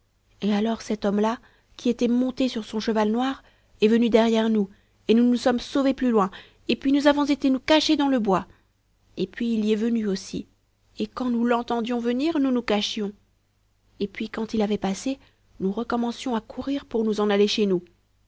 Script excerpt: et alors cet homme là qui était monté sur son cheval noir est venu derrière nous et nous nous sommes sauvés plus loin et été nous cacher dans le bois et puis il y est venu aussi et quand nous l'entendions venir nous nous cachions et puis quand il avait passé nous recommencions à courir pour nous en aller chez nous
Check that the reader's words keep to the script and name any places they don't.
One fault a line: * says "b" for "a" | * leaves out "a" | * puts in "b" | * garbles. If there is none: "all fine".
* puts in "puis nous avons"